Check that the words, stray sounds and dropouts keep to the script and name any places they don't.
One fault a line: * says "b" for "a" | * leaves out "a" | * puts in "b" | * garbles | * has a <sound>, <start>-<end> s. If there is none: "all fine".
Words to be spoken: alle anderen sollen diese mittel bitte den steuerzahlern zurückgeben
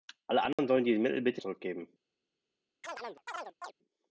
* has a dropout, 0.5-0.6 s
* leaves out "den steuerzahlern"
* has a chirp, 2.8-3.7 s